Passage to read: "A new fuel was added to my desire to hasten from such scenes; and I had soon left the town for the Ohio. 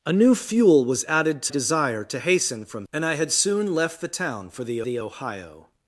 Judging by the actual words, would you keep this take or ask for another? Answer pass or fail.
fail